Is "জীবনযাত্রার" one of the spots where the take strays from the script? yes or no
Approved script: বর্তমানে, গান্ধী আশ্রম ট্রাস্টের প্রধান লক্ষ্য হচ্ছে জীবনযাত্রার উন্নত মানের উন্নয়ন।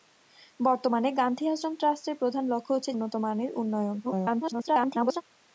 yes